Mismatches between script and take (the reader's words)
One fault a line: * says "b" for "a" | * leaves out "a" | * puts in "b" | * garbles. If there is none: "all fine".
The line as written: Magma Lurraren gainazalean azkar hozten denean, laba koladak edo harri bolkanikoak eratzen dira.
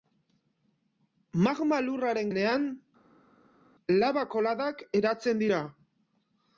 * leaves out "gainazalean azkar hozten"
* leaves out "edo harri bolkanikoak"